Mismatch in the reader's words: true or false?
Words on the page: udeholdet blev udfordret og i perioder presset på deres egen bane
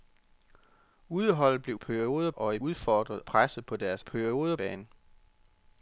true